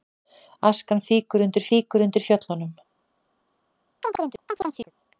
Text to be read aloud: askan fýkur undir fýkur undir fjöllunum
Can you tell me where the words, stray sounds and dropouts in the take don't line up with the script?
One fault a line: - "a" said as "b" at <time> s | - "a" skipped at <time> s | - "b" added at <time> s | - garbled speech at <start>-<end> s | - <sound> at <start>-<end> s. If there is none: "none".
- chirp at 4.0-4.9 s